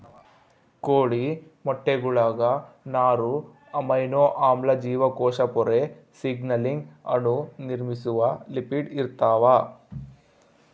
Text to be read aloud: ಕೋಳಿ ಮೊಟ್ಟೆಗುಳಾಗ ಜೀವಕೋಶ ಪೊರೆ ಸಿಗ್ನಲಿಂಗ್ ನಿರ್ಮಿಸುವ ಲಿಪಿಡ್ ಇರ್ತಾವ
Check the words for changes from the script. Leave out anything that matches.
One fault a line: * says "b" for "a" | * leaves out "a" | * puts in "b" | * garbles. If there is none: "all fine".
* puts in "ನಾರು ಅಮೈನೋ ಆಮ್ಲ"
* puts in "ಅಣು"